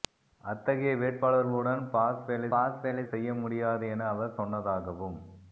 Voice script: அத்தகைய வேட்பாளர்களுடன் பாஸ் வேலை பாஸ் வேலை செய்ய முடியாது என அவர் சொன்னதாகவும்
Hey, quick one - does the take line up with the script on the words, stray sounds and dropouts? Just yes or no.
yes